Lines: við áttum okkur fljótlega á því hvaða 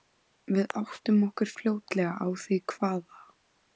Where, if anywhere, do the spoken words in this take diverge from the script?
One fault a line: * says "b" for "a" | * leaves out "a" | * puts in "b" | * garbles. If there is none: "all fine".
all fine